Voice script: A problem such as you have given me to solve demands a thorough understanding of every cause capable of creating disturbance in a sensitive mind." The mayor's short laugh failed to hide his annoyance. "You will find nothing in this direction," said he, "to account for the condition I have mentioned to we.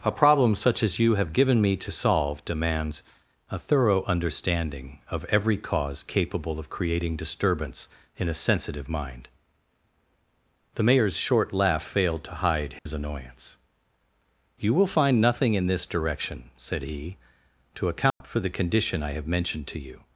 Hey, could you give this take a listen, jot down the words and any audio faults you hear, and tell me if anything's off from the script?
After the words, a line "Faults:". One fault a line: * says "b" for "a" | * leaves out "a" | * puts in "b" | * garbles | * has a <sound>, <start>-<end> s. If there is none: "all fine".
A problem such as you have given me to solve demands a thorough understanding of every cause capable of creating disturbance in a sensitive mind." The mayor's short laugh failed to hide his annoyance. "You will find nothing in this direction," said he, "to account for the condition I have mentioned to you.
Faults:
* has a dropout, 12.8-12.9 s
* has a dropout, 18.1-18.2 s
* says "you" for "we"